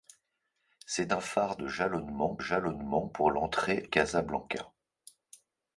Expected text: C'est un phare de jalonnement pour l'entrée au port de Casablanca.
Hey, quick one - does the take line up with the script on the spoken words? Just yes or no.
no